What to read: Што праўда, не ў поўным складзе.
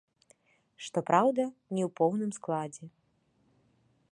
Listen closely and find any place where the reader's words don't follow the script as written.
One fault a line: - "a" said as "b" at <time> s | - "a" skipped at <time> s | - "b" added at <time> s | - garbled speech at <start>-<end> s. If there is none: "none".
none